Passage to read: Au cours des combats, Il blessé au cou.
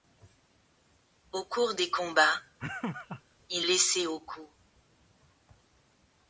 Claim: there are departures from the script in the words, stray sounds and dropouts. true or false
true